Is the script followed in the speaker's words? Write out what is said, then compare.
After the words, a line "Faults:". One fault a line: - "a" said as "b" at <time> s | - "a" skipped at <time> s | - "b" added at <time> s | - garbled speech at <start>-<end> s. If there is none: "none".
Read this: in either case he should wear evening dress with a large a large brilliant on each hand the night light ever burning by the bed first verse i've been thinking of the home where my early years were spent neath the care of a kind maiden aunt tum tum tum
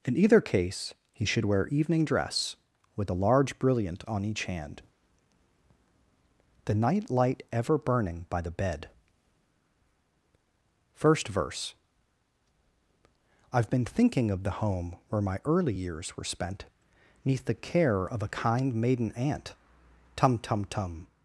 in either case he should wear evening dress with a large brilliant on each hand the night light ever burning by the bed first verse i've been thinking of the home where my early years were spent neath the care of a kind maiden aunt tum tum tum
Faults:
- "a large" skipped at 3.6 s